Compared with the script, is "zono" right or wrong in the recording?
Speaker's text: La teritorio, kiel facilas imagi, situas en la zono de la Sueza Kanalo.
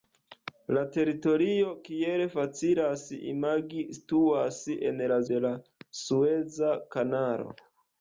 wrong